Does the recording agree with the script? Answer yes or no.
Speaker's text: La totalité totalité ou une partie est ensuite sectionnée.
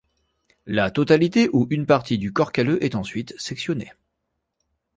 no